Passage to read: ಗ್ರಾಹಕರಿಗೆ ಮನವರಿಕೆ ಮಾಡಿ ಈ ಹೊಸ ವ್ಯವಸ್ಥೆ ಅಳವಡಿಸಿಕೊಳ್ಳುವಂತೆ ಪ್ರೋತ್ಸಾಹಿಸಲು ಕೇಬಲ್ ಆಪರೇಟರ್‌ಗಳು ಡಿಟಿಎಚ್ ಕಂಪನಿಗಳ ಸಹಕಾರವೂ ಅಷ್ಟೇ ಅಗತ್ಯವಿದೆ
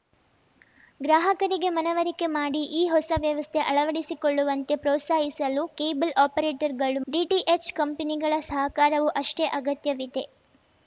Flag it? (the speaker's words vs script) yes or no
no